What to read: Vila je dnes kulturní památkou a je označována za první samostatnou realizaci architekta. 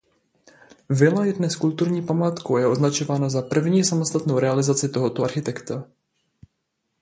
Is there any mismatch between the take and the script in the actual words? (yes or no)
yes